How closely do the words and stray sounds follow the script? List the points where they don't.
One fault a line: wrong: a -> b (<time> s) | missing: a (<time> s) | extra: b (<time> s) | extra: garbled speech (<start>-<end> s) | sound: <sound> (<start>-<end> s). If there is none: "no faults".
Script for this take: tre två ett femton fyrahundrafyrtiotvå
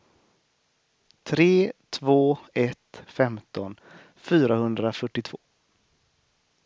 no faults